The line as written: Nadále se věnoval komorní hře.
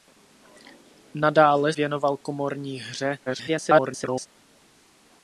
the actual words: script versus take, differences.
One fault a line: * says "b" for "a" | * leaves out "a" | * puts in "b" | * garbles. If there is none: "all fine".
* leaves out "se"
* garbles